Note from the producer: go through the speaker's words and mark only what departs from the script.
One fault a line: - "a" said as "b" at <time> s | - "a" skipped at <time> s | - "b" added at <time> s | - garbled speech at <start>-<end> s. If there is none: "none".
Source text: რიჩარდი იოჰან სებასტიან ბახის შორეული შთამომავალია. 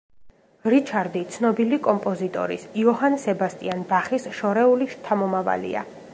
- "ცნობილი კომპოზიტორის" added at 1.4 s